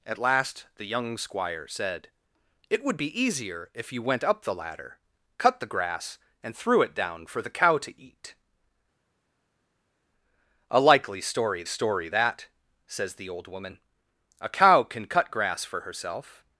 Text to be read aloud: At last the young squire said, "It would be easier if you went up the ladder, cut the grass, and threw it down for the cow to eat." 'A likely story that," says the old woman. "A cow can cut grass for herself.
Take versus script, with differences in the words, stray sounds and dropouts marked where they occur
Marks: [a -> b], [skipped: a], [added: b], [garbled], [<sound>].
At last the young squire said, "It would be easier if you went up the ladder, cut the grass, and threw it down for the cow to eat." 'A likely story [added: story] that," says the old woman. "A cow can cut grass for herself.